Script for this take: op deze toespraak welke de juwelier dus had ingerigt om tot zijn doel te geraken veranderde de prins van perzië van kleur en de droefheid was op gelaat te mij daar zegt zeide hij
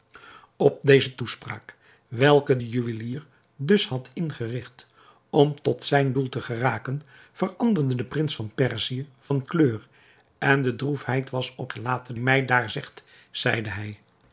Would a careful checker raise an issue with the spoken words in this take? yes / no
no